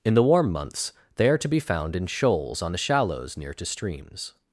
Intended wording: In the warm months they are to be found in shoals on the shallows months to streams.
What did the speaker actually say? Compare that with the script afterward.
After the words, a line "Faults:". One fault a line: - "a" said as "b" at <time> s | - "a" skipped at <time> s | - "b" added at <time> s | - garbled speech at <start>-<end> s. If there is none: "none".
In the warm months they are to be found in shoals on the shallows near to streams.
Faults:
- "months" said as "near" at 3.4 s